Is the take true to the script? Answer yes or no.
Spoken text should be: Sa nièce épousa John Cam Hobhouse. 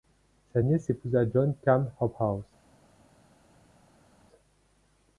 yes